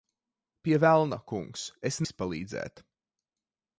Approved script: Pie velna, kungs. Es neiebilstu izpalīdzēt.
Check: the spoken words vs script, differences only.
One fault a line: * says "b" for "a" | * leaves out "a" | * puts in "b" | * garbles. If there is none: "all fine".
* leaves out "neiebilstu"